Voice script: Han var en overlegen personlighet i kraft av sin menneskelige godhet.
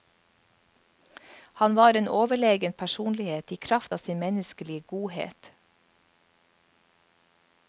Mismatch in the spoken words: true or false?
false